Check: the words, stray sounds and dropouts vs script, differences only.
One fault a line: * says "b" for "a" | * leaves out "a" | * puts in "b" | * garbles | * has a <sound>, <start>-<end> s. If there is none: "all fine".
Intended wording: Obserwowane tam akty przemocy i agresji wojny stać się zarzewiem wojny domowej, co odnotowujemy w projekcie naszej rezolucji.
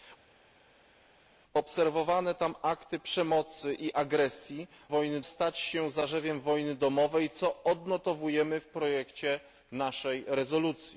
all fine